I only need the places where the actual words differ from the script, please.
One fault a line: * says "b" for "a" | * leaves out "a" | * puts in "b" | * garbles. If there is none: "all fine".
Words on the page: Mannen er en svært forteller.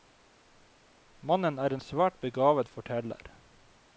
* puts in "begavet"